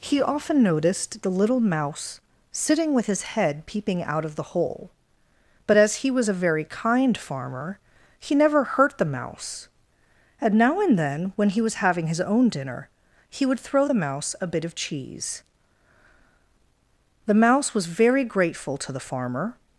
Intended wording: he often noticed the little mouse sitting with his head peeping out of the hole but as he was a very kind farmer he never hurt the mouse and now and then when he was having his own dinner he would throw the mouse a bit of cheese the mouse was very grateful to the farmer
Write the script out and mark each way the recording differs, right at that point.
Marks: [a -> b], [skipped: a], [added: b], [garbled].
he often noticed the little mouse sitting with his head peeping out of the hole but as he was a very kind farmer he never hurt the mouse and now and then when he was having his own dinner he would throw the mouse a bit of cheese the mouse was very grateful to the farmer